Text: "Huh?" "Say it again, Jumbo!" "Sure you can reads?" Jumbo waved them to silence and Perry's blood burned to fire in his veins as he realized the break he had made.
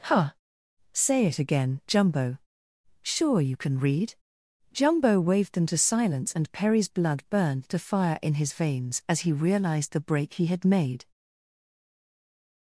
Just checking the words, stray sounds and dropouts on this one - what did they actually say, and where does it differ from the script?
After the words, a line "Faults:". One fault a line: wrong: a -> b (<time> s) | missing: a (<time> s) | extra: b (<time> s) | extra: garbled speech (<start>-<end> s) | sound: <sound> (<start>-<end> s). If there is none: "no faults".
"Huh?" "Say it again, Jumbo!" "Sure you can read?" Jumbo waved them to silence and Perry's blood burned to fire in his veins as he realized the break he had made.
Faults:
wrong: reads -> read (3.8 s)